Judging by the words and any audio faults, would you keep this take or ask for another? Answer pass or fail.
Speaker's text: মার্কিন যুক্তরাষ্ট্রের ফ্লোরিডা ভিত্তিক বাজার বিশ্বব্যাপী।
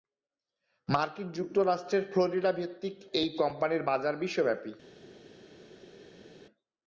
fail